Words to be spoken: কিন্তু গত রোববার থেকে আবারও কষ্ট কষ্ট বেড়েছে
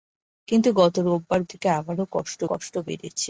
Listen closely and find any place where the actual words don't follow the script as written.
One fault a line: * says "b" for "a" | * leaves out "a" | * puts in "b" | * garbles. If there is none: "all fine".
all fine